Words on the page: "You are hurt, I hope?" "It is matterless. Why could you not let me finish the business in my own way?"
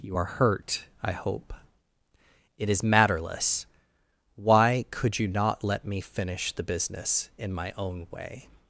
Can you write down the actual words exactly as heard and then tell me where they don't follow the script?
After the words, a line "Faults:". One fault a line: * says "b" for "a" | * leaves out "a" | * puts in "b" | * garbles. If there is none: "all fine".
"You are hurt, I hope?" "It is matterless. Why could you not let me finish the business in my own way?"
Faults:
all fine